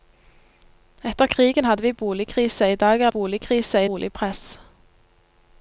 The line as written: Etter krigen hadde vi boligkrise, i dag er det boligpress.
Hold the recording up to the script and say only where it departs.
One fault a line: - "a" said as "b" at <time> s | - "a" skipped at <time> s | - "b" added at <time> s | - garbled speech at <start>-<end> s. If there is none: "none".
- "det" said as "boligkrise" at 3.1 s